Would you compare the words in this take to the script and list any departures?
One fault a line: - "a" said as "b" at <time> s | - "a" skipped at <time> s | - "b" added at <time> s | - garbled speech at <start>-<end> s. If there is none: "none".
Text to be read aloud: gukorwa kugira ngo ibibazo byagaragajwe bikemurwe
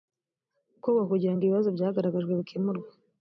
none